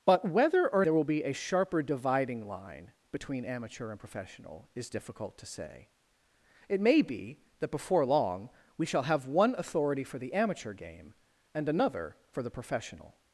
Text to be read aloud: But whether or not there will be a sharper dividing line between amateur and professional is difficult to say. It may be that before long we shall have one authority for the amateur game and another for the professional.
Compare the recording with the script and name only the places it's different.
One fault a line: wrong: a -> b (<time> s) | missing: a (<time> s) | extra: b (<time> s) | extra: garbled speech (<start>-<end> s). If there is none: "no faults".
missing: not (0.8 s)